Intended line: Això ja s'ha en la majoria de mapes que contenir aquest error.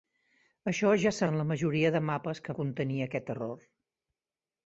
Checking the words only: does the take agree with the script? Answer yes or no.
yes